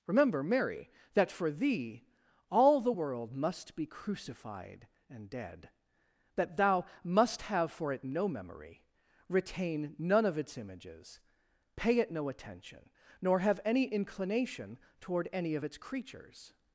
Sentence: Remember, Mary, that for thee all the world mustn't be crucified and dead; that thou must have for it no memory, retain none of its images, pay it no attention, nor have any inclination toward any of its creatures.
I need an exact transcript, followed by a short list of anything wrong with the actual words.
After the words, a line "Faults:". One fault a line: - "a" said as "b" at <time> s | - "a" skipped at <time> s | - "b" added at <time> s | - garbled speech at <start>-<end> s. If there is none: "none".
Remember, Mary, that for thee all the world must be crucified and dead; that thou must have for it no memory, retain none of its images, pay it no attention, nor have any inclination toward any of its creatures.
Faults:
- "mustn't" said as "must" at 3.4 s